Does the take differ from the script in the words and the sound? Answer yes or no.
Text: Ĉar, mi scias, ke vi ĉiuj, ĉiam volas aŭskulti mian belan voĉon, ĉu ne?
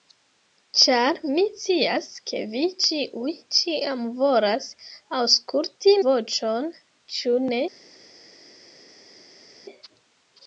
yes